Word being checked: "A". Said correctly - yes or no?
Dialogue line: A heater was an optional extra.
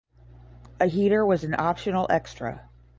yes